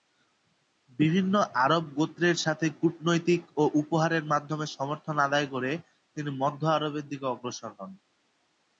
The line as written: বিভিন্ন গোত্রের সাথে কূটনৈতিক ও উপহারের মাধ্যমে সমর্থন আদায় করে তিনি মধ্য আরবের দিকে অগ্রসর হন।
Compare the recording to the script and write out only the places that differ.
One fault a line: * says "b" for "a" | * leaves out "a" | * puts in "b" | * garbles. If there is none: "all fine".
* puts in "আরব"